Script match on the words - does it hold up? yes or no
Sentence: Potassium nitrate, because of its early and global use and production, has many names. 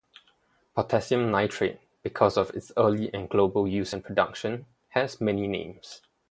yes